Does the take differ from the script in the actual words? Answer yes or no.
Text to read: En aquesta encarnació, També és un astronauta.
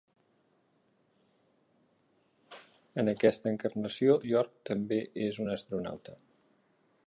yes